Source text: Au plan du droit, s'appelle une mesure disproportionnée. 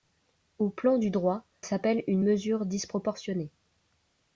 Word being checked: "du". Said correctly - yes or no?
yes